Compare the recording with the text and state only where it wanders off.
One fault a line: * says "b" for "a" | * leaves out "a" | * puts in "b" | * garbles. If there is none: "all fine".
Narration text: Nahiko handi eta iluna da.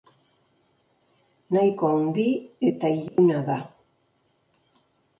all fine